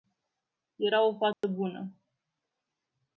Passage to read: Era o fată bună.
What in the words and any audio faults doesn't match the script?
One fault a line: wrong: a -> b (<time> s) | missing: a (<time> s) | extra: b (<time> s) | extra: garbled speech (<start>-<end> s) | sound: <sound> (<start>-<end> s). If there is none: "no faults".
sound: dropout (1.3-1.4 s)